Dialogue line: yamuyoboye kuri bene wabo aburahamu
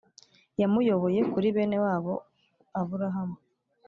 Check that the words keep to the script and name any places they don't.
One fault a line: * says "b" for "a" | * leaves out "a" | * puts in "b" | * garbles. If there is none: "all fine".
all fine